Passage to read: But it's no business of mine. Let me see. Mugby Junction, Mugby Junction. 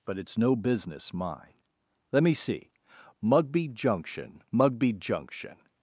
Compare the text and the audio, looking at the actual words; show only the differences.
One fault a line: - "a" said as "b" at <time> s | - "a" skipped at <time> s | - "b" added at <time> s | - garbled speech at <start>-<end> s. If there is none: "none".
- "of" skipped at 1.1 s